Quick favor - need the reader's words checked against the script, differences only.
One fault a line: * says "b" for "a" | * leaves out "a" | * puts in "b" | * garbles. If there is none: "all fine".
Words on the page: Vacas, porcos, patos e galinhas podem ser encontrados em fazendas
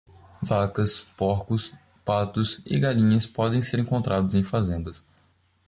all fine